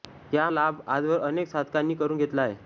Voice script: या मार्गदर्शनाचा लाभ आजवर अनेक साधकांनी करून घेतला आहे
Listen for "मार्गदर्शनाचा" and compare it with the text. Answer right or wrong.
wrong